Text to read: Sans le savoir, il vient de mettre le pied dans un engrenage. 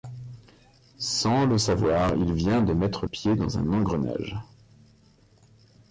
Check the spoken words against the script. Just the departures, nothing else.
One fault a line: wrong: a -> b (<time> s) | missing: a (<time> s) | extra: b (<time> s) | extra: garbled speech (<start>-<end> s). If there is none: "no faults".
missing: le (3.1 s)